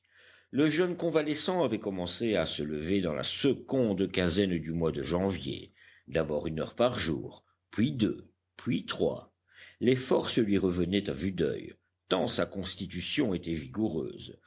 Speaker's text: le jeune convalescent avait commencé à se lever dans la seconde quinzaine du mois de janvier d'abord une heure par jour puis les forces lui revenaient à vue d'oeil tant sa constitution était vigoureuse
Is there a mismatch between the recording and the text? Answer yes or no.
yes